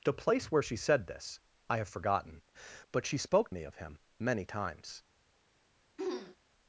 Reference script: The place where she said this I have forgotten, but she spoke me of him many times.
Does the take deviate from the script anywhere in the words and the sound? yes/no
yes